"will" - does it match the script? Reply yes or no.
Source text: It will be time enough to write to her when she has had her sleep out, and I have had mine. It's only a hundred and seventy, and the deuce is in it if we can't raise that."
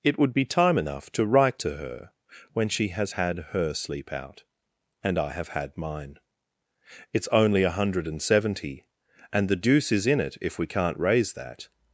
no